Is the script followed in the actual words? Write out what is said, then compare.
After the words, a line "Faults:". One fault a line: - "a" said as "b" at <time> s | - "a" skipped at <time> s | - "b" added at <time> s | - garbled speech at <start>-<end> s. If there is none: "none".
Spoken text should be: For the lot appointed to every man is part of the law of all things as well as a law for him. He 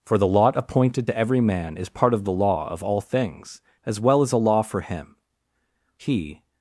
For the lot appointed to every man is part of the law of all things as well as a law for him. He
Faults:
none